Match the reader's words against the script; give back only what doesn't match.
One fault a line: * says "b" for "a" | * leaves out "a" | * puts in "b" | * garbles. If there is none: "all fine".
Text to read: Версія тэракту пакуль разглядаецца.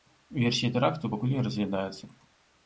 * puts in "не"